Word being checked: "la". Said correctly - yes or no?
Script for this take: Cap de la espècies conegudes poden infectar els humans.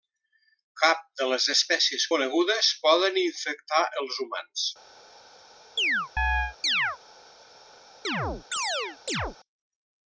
no